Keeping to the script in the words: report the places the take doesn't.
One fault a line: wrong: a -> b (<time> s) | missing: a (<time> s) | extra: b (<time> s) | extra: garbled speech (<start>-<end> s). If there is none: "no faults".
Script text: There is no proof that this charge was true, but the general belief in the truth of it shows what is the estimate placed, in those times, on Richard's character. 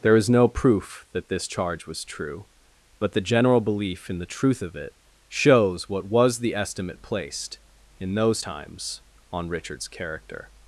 wrong: is -> was (6.0 s)